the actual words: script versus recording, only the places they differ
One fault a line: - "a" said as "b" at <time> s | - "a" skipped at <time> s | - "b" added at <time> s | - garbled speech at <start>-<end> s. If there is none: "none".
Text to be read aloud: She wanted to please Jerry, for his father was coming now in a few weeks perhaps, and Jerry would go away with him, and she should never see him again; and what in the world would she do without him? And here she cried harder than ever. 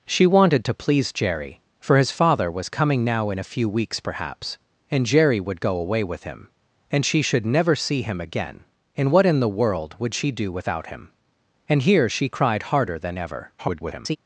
- garbled speech at 13.6-14.2 s